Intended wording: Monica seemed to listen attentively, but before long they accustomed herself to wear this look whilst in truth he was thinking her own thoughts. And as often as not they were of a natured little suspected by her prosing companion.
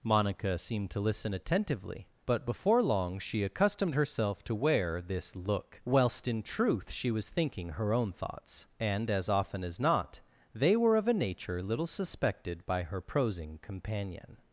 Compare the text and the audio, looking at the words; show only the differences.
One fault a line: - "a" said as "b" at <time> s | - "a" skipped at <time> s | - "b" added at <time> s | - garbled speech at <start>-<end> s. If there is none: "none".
- "they" said as "she" at 3.2 s
- "he" said as "she" at 6.9 s
- "natured" said as "nature" at 11.1 s